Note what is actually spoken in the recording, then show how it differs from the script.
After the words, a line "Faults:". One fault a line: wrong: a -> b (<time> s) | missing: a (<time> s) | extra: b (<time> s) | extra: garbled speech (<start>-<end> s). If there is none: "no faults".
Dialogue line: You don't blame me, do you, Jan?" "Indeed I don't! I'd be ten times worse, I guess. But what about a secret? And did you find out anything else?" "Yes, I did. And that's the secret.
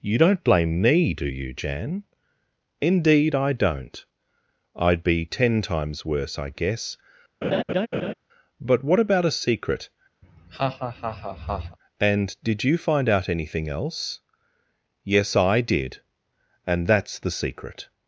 You don't blame me, do you, Jan?" "Indeed I don't! I'd be ten times worse, I guess. But what about a secret? And did you find out anything else?" "Yes, I did. And that's the secret.
Faults:
no faults